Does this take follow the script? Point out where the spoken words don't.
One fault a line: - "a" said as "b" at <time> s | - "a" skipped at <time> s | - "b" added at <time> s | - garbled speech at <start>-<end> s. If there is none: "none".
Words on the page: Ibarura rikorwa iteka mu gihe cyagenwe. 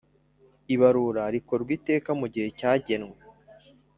none